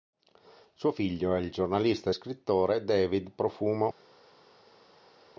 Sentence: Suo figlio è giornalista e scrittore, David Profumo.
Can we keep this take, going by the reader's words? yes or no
no